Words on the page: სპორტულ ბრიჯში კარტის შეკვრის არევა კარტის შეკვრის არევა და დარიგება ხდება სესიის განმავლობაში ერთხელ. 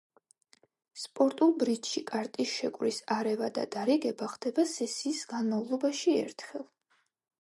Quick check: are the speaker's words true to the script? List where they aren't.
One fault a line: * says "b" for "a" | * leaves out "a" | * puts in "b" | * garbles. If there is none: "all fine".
* leaves out "კარტის შეკვრის არევა"